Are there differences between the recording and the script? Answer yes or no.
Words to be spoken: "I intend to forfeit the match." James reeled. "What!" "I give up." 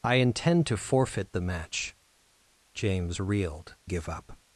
yes